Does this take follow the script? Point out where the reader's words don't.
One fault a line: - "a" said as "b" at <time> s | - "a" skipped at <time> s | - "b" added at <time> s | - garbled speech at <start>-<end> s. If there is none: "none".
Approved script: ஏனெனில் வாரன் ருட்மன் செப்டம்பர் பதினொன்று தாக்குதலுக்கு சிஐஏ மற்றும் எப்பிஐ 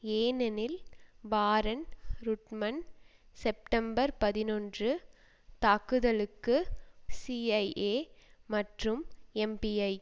none